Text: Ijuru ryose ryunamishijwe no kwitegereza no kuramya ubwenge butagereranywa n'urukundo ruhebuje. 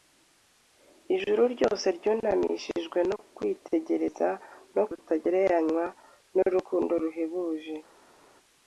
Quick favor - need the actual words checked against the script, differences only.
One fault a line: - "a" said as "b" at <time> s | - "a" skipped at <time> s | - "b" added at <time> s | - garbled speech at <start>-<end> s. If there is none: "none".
- "kuramya ubwenge" skipped at 4.8 s